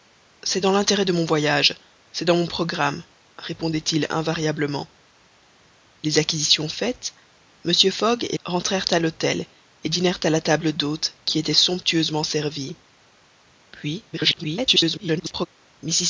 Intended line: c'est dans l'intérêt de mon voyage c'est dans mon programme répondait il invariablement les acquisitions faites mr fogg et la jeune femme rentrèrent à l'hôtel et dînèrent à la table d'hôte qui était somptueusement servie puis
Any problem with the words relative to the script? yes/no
yes